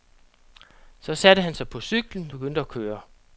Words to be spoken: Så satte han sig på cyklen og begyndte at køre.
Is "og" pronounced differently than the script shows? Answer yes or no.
yes